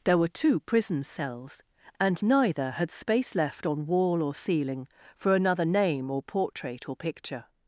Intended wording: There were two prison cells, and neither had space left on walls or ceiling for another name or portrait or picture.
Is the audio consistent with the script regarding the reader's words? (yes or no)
no